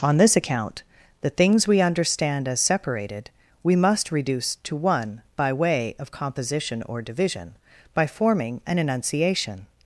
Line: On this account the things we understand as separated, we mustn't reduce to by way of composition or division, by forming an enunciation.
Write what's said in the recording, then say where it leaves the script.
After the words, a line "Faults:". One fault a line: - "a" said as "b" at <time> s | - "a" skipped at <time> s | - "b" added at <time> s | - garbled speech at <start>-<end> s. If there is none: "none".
On this account the things we understand as separated, we must reduce to one by way of composition or division, by forming an enunciation.
Faults:
- "mustn't" said as "must" at 3.8 s
- "one" added at 4.8 s